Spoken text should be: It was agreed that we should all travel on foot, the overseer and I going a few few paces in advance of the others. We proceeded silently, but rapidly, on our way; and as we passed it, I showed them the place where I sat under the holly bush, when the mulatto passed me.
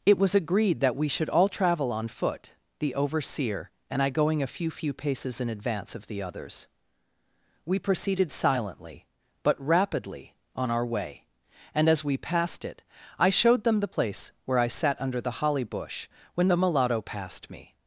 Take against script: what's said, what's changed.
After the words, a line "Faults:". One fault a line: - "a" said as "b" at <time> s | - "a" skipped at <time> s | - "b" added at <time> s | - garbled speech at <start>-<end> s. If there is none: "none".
It was agreed that we should all travel on foot, the overseer and I going a few few paces in advance of the others. We proceeded silently, but rapidly, on our way; and as we passed it, I showed them the place where I sat under the holly bush, when the mulatto passed me.
Faults:
none